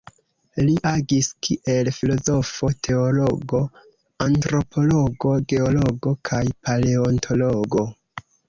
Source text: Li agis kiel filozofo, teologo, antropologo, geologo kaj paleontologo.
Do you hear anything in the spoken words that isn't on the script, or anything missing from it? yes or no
no